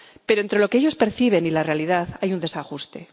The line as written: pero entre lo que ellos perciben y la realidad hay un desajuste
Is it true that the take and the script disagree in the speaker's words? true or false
false